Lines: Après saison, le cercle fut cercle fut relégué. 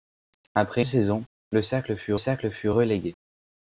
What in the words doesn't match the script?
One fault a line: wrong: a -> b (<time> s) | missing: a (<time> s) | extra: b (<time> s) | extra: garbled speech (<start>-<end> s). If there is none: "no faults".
no faults